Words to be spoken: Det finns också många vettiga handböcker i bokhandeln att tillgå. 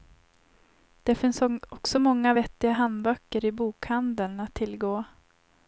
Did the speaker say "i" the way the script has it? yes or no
yes